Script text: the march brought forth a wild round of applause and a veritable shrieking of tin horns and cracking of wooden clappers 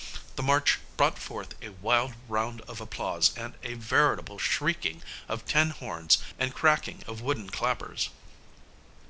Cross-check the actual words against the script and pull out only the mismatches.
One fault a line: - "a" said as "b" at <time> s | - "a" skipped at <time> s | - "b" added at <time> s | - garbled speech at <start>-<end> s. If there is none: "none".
none